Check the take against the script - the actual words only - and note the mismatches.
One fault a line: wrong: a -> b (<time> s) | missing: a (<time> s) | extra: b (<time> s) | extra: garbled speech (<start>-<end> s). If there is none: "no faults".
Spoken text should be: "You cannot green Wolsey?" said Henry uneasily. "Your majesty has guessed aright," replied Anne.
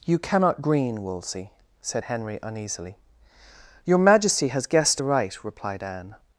no faults